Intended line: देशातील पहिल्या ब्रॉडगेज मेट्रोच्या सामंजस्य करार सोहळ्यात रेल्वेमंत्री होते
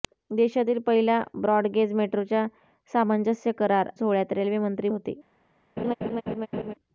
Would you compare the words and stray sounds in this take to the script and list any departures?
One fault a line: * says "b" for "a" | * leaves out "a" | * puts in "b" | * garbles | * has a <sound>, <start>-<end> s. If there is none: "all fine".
* has a laugh, 5.8-6.7 s